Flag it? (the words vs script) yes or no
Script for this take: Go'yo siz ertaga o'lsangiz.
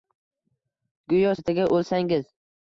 yes